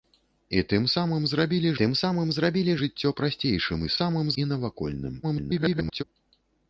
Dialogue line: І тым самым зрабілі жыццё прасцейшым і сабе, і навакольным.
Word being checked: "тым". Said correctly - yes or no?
yes